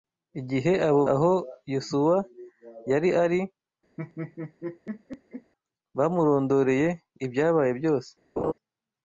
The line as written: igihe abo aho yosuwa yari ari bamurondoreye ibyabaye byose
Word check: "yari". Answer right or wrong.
right